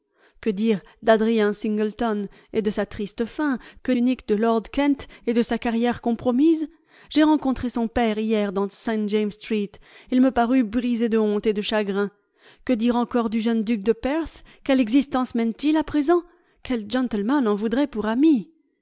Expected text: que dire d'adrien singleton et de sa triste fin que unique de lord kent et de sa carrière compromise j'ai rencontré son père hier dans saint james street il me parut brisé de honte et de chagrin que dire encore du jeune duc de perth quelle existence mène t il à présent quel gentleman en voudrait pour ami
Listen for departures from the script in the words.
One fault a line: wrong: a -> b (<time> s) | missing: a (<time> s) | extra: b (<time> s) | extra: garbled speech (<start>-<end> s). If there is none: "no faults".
no faults